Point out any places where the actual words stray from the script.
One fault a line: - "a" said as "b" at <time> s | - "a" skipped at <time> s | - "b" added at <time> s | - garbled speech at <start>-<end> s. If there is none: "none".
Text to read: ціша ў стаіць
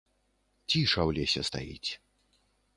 - "лесе" added at 1.2 s